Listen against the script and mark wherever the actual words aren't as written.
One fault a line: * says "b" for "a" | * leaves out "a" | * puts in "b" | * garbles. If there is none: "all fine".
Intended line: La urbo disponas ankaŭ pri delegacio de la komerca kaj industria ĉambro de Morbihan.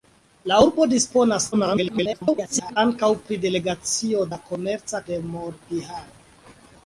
* garbles
* leaves out "de"
* leaves out "kaj industria ĉambro"